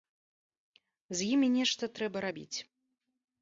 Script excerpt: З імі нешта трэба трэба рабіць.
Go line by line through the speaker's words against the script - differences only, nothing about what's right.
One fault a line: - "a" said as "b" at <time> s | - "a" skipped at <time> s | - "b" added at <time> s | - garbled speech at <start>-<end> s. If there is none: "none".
- "трэба" skipped at 2.3 s